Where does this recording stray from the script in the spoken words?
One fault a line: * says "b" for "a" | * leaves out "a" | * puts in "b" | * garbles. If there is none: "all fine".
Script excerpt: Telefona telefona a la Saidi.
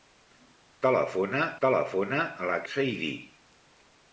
all fine